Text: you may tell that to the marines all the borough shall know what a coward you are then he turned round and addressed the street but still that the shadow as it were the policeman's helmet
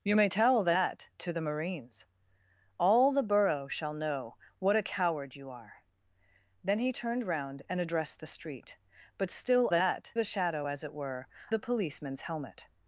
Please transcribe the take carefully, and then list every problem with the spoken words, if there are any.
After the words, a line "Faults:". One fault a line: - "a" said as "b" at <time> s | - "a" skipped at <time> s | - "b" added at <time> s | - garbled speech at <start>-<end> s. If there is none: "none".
you may tell that to the marines all the borough shall know what a coward you are then he turned round and addressed the street but still that the shadow as it were the policeman's helmet
Faults:
none